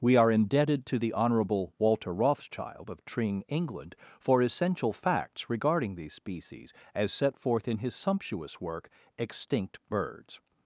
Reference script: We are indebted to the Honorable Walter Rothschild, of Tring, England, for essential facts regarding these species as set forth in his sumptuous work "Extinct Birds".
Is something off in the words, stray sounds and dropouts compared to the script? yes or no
no